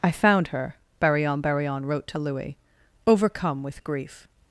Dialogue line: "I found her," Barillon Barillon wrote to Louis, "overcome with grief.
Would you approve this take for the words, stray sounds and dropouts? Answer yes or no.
yes